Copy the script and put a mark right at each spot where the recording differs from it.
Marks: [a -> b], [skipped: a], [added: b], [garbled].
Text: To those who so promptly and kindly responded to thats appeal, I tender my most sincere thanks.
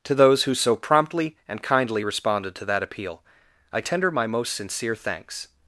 To those who so promptly and kindly responded to [thats -> that] appeal, I tender my most sincere thanks.